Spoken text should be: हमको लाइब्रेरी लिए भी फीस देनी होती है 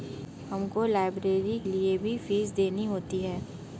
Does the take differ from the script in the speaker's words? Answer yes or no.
no